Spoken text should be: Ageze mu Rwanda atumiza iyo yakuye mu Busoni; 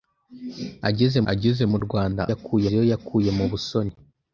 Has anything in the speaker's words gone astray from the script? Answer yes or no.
yes